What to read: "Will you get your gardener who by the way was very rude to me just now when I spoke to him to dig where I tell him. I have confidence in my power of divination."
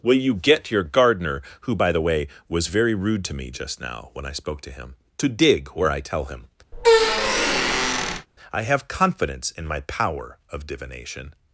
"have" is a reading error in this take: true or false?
false